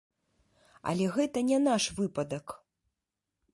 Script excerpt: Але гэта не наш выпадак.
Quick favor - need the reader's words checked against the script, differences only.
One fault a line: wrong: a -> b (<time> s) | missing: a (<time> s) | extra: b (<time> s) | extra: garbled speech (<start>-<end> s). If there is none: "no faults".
no faults